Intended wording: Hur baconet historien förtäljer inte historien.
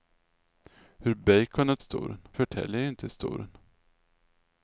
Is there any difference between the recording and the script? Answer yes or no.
no